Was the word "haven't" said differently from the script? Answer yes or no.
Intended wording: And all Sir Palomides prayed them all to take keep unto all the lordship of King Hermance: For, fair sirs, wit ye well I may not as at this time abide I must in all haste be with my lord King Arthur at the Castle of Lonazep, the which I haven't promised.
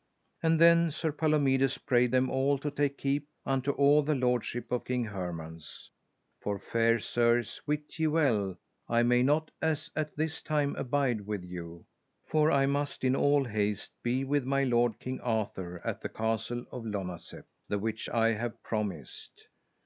yes